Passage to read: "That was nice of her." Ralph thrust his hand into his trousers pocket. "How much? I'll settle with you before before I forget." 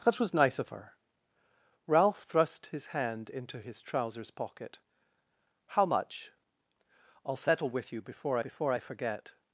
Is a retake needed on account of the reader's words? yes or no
no